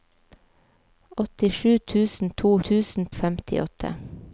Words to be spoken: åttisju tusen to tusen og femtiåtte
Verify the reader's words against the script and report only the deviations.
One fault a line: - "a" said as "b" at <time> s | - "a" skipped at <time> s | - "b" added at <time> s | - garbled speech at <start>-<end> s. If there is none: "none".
none